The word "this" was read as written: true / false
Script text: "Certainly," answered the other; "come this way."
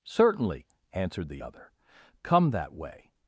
false